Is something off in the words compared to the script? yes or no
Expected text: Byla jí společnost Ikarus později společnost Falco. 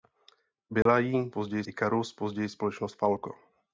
yes